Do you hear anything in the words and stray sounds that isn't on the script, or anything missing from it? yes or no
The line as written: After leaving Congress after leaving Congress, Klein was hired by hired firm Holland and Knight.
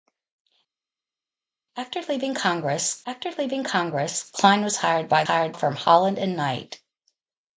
no